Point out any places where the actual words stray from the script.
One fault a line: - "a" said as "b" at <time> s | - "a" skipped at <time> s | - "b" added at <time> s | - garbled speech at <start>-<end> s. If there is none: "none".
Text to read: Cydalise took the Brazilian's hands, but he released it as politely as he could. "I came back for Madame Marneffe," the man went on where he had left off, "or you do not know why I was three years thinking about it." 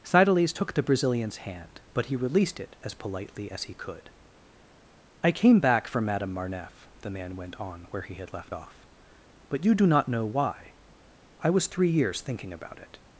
- "hands" said as "hand" at 1.4 s
- "or" said as "but" at 9.5 s